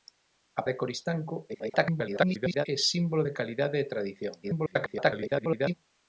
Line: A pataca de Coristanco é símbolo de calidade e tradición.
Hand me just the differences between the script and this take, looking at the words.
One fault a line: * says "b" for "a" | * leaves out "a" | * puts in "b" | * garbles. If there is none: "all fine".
* leaves out "pataca"
* garbles
* garbles